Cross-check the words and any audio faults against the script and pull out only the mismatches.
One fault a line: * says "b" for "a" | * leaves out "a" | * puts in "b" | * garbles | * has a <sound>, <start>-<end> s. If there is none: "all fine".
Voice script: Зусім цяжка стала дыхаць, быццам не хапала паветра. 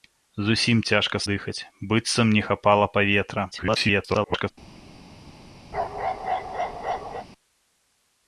* leaves out "стала"
* garbles
* has a bark, 5.7-7.3 s